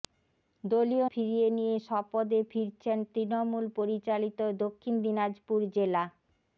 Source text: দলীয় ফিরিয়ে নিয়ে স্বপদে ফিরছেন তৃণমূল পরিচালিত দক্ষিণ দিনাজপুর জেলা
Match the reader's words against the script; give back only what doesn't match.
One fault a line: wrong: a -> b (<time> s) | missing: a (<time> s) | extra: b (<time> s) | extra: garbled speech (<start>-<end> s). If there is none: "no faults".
no faults